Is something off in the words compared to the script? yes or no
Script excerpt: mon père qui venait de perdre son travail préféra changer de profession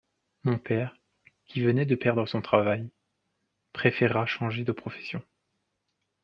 no